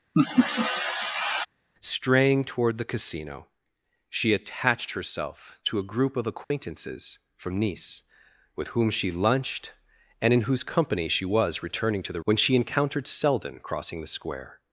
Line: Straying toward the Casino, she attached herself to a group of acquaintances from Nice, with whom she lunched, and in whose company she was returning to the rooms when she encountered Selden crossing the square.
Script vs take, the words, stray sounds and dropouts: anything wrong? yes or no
yes